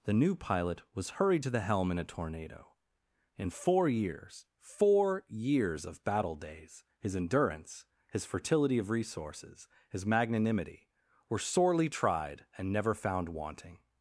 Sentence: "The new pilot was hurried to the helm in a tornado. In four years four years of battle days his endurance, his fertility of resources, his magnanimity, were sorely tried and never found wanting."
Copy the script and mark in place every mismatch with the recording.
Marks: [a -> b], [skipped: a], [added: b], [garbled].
"The new pilot was hurried to the helm in a tornado. In four years four years of battle days his endurance, his fertility of resources, his magnanimity, were sorely tried and never found wanting."